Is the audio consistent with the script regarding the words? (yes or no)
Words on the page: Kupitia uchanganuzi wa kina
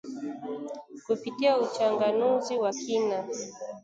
yes